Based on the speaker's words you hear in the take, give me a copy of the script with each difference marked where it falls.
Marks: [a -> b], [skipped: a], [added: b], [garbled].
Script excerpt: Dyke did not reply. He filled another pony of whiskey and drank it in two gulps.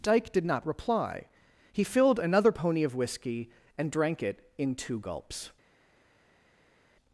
Dyke did not reply. He filled another pony of whiskey and drank it in two gulps.